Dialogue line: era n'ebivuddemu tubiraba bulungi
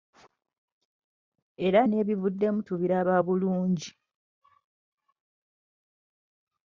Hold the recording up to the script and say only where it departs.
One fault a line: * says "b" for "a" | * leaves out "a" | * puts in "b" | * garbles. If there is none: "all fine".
all fine